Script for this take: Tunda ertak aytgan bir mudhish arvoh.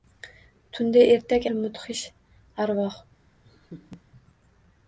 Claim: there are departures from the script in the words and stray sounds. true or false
true